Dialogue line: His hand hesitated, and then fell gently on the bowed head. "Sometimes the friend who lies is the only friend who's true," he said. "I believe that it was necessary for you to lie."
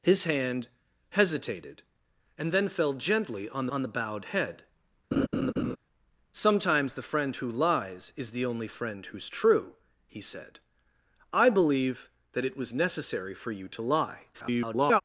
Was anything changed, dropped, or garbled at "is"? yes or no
no